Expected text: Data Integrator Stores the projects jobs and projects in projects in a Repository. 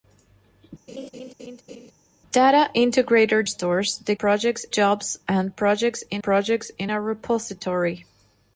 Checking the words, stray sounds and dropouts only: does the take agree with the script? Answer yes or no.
no